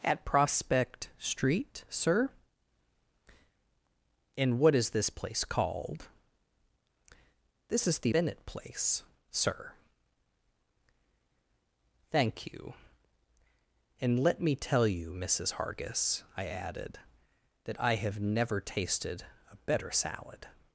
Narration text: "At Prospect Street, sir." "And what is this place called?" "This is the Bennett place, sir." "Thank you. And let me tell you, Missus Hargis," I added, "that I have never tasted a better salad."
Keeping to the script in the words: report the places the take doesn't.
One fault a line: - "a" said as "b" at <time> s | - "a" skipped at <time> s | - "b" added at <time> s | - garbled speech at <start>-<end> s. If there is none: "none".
none